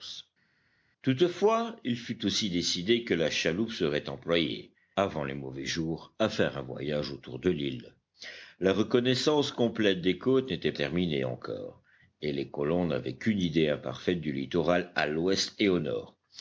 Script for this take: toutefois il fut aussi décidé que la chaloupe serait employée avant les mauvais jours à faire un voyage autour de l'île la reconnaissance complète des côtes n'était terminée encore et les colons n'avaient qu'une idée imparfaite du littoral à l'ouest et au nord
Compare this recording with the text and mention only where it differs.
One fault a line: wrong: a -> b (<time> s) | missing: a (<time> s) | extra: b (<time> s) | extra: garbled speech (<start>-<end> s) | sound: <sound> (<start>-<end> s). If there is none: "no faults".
no faults